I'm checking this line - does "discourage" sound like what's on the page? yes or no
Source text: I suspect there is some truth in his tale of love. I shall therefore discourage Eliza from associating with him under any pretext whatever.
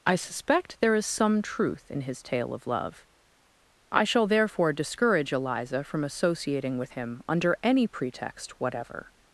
yes